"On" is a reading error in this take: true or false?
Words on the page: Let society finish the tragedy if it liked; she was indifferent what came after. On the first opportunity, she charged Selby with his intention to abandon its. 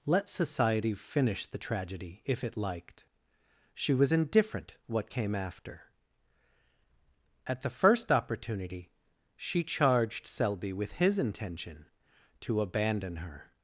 true